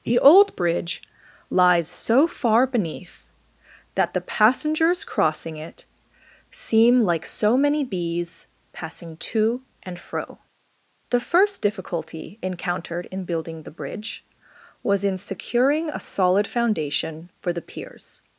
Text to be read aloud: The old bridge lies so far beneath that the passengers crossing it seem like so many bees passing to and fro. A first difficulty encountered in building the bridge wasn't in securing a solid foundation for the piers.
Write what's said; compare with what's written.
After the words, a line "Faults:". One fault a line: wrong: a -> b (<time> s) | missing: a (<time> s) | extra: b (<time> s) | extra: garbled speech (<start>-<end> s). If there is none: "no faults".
The old bridge lies so far beneath that the passengers crossing it seem like so many bees passing to and fro. The first difficulty encountered in building the bridge was in securing a solid foundation for the piers.
Faults:
wrong: A -> The (11.1 s)
wrong: wasn't -> was (14.8 s)